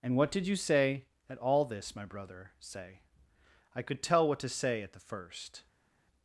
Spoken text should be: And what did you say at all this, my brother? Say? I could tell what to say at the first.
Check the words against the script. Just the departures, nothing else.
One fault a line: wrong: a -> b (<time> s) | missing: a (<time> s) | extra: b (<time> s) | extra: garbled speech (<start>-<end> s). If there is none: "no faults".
no faults